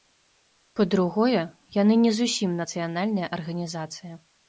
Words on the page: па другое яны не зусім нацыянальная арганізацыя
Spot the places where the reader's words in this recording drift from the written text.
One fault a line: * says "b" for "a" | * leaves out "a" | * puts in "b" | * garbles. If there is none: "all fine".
all fine